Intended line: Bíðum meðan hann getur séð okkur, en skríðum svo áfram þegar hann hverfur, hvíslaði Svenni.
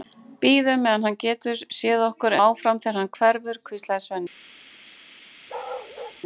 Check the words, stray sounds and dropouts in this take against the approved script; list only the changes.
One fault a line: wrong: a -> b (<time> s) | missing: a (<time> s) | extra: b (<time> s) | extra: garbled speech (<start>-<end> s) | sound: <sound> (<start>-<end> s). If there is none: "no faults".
missing: en skríðum svo (2.4 s)
sound: bark (5.5-6.2 s)